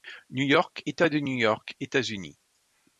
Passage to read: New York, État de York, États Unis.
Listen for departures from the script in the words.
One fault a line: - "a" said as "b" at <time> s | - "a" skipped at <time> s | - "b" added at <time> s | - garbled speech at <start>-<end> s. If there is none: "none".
- "New" added at 1.2 s